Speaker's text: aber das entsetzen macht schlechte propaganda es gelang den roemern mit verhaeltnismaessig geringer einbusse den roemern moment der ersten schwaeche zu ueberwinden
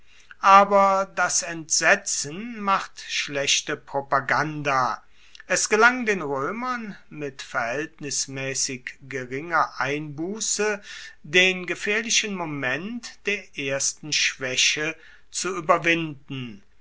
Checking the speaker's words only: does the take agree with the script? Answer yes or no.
no